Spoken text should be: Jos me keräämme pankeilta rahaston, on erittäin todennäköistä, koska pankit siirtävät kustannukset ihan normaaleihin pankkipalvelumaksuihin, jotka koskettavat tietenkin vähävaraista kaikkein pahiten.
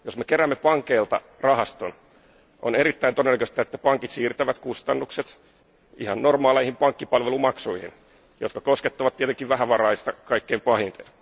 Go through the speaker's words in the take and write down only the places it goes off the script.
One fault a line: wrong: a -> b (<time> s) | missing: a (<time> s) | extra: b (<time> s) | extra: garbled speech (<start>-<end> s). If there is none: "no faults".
wrong: koska -> että (3.6 s)